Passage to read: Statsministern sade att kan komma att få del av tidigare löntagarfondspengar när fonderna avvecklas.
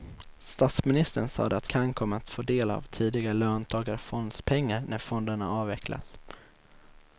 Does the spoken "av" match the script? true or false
true